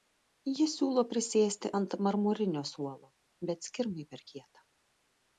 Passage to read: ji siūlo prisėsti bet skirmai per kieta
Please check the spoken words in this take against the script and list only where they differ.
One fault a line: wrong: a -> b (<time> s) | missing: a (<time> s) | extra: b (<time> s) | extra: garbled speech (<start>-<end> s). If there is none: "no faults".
extra: ant marmurinio suolo (1.8 s)